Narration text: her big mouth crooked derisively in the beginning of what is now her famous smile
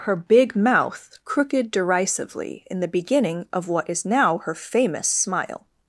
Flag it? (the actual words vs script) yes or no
no